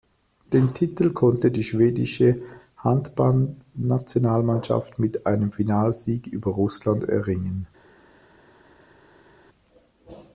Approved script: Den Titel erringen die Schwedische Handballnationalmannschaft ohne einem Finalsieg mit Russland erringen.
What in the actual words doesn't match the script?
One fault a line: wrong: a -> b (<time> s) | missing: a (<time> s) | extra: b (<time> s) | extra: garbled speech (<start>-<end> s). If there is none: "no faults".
wrong: erringen -> konnte (1.1 s)
wrong: ohne -> mit (5.0 s)
wrong: mit -> über (6.3 s)